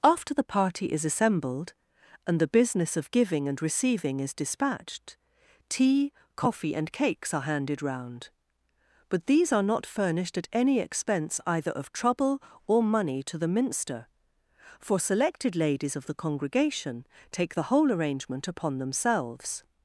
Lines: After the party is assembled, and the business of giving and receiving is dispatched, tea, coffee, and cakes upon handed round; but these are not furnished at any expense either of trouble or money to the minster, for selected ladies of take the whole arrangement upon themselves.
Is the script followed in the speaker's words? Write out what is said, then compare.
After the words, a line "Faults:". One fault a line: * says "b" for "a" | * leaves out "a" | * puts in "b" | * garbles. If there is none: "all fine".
After the party is assembled, and the business of giving and receiving is dispatched, tea, coffee, and cakes are handed round; but these are not furnished at any expense either of trouble or money to the minster, for selected ladies of the congregation take the whole arrangement upon themselves.
Faults:
* says "are" for "upon"
* puts in "the congregation"